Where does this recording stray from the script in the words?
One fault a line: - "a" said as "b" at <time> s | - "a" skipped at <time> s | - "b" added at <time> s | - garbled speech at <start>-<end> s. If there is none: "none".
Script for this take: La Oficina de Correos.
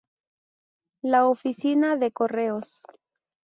none